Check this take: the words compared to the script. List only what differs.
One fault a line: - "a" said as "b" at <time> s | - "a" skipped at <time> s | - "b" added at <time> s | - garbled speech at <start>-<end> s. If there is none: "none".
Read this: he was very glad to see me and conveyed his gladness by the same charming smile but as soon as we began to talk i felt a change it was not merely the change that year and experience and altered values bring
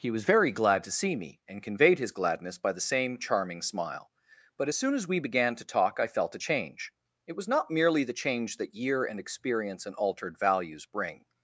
none